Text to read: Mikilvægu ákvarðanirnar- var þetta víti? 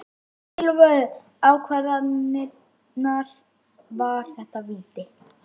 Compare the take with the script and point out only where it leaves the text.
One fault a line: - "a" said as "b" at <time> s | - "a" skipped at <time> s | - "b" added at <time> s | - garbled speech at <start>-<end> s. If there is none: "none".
none